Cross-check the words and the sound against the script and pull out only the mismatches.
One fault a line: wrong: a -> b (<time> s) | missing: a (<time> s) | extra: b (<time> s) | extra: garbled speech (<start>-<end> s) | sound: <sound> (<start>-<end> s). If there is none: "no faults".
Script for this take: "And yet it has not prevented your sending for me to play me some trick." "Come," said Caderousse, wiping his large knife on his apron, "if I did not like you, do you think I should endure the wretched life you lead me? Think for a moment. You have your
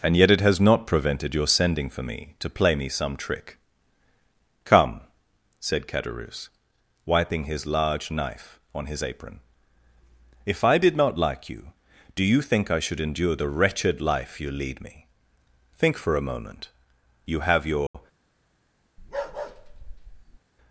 sound: dropout (17.9-17.9 s)
sound: bark (19.0-20.4 s)